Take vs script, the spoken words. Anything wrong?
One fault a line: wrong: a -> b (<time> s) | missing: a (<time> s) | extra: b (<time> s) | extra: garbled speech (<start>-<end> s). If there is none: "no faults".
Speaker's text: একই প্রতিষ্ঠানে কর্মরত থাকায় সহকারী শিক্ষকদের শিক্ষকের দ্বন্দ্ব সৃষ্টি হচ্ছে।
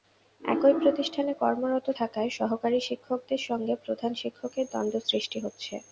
extra: সঙ্গে প্রধান (3.5 s)